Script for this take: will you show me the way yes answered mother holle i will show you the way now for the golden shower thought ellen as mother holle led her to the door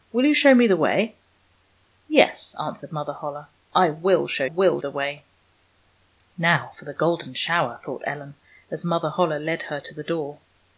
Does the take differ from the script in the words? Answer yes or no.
yes